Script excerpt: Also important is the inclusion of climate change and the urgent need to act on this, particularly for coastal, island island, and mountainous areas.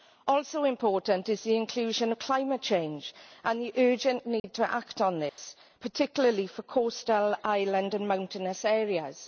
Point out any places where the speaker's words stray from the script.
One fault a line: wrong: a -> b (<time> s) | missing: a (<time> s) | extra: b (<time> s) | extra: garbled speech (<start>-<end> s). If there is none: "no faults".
missing: island (7.9 s)